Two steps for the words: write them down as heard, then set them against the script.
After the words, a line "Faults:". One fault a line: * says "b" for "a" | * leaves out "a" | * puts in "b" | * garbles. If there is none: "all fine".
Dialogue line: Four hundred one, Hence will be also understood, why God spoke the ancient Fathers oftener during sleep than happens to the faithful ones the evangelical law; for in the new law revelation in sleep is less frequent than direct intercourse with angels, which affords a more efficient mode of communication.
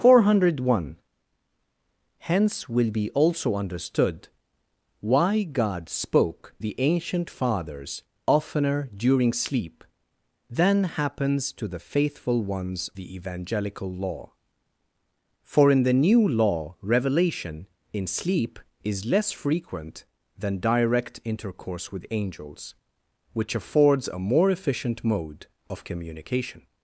Four hundred one, Hence will be also understood, why God spoke the ancient Fathers oftener during sleep than happens to the faithful ones the evangelical law; for in the new law revelation in sleep is less frequent than direct intercourse with angels, which affords a more efficient mode of communication.
Faults:
all fine